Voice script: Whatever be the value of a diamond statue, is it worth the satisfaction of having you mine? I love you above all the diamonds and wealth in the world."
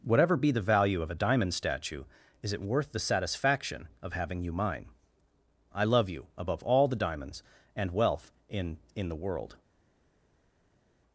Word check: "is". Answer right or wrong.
right